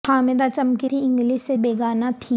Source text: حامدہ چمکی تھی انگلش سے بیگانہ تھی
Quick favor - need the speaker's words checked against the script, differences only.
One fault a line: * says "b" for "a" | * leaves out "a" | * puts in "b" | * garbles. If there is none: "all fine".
all fine